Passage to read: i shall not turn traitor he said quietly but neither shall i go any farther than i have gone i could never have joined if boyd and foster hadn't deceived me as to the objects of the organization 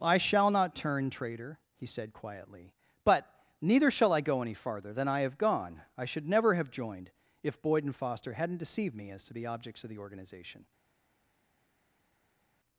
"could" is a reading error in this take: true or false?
true